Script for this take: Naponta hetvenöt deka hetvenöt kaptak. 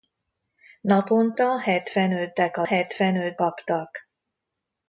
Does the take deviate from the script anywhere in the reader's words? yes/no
no